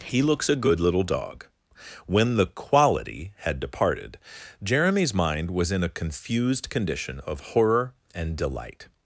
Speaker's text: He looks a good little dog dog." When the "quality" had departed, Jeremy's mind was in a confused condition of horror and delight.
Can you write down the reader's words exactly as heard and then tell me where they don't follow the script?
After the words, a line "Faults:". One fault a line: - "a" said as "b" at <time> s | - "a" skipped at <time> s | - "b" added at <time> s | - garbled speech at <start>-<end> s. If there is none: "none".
He looks a good little dog." When the "quality" had departed, Jeremy's mind was in a confused condition of horror and delight.
Faults:
- "dog" skipped at 1.4 s